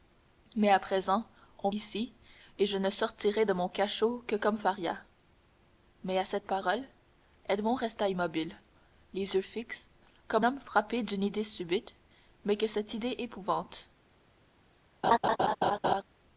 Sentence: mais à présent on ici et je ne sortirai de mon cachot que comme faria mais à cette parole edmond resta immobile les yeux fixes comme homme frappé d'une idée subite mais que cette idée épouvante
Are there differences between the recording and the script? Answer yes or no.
no